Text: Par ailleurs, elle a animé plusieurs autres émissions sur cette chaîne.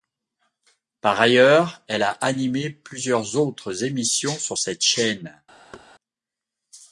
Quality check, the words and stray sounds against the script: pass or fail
fail